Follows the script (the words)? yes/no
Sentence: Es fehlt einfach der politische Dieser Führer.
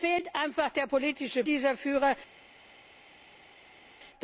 yes